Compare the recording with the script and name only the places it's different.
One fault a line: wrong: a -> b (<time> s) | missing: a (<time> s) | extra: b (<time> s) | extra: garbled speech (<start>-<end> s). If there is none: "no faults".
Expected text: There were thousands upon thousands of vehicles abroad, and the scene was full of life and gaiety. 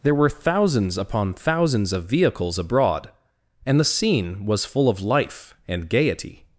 no faults